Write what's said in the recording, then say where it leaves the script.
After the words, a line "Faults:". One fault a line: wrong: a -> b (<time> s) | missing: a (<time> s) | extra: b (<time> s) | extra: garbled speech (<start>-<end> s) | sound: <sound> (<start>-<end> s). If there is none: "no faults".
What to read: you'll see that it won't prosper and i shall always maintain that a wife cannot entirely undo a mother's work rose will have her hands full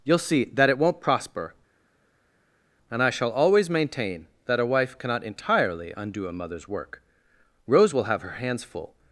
you'll see that it won't prosper and i shall always maintain that a wife cannot entirely undo a mother's work rose will have her hands full
Faults:
no faults